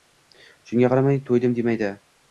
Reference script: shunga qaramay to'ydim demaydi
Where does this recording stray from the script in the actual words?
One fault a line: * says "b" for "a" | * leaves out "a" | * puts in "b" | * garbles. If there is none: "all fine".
all fine